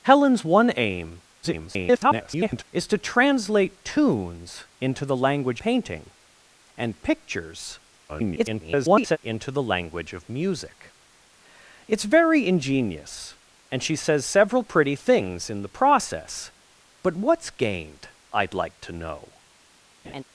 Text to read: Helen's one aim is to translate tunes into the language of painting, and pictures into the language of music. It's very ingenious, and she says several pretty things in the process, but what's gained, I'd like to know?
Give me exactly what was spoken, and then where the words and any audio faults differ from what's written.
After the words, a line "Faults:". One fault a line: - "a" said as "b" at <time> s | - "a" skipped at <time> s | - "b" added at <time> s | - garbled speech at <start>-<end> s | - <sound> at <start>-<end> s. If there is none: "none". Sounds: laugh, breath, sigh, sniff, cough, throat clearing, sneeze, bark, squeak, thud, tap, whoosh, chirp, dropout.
Helen's one aim [garbled] is to translate tunes into the language painting, and pictures [garbled] into the language of music. It's very ingenious, and she says several pretty things in the process, but what's gained, I'd like to know?
Faults:
- garbled speech at 1.4-2.6 s
- "of" skipped at 5.6 s
- garbled speech at 8.1-9.2 s
- laugh at 20.0-20.2 s